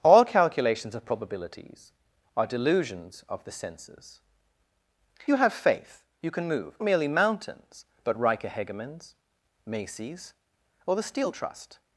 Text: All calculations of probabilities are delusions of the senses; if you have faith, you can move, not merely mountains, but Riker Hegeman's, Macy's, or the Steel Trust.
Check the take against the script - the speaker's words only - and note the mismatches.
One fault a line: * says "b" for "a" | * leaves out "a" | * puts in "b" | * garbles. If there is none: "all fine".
* leaves out "if"
* leaves out "not"